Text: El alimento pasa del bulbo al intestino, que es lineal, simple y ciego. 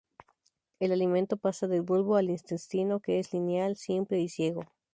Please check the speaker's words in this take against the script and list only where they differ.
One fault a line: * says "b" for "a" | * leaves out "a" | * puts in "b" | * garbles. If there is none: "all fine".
all fine